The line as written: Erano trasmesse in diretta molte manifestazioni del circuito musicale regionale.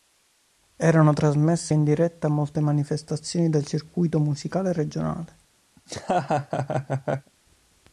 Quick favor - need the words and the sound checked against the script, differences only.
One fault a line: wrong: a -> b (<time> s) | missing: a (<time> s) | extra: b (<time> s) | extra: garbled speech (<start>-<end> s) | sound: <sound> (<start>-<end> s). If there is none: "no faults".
sound: laugh (5.8-7.3 s)